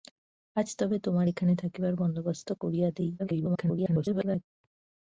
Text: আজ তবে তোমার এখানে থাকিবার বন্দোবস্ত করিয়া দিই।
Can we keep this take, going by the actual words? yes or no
no